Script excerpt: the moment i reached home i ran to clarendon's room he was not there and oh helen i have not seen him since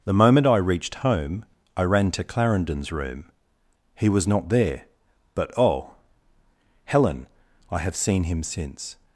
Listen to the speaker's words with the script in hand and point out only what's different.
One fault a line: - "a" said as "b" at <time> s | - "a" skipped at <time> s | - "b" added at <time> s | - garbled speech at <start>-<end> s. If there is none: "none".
- "and" said as "but" at 5.3 s
- "not" skipped at 8.0 s